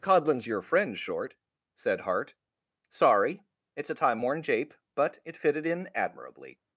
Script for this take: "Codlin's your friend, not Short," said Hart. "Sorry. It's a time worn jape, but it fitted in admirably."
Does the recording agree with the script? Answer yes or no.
no